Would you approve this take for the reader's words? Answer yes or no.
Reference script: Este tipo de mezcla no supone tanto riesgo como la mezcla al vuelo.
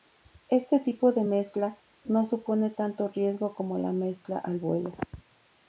yes